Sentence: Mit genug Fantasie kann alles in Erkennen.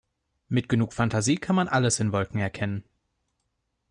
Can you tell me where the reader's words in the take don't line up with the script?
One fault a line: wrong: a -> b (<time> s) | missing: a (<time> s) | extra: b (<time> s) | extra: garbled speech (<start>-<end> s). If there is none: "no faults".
extra: man (1.6 s)
extra: Wolken (2.1 s)